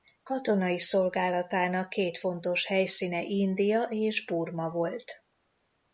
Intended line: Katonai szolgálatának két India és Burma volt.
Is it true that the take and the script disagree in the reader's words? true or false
true